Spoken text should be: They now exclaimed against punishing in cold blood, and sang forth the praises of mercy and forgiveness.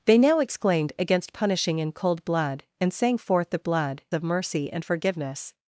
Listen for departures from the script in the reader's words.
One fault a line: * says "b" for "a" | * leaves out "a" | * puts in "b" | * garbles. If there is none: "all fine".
* says "blood" for "praises"